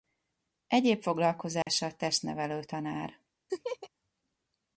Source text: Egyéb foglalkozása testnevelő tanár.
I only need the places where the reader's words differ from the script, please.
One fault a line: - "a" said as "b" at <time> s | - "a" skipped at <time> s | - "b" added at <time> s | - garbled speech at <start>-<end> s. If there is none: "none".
none